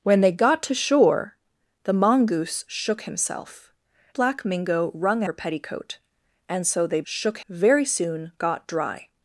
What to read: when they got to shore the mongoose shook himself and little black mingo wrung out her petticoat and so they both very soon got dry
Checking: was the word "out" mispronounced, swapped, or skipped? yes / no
yes